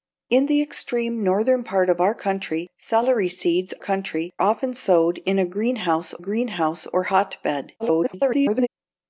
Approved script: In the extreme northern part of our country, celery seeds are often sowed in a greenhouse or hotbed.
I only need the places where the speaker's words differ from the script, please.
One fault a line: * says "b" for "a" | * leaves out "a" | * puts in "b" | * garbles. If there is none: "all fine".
* says "country" for "are"
* puts in "greenhouse"
* garbles